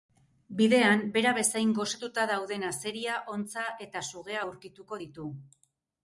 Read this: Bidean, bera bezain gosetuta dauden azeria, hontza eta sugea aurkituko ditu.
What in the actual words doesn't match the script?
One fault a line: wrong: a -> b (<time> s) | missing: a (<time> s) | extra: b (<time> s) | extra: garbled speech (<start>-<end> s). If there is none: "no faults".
no faults